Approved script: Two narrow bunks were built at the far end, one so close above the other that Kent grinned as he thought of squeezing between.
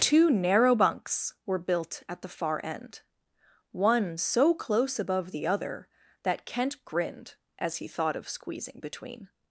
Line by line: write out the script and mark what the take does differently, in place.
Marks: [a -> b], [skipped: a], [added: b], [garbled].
Two narrow bunks were built at the far end, one so close above the other that Kent grinned as he thought of squeezing between.